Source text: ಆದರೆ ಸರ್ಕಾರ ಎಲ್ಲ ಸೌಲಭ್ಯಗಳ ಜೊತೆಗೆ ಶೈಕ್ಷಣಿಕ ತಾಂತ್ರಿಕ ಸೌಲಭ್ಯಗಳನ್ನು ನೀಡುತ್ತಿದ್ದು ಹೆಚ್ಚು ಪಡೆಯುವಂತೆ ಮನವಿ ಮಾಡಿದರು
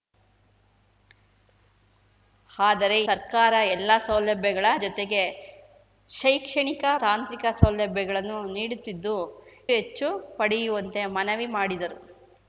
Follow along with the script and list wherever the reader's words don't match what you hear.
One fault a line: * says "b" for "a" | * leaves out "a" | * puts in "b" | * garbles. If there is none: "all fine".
all fine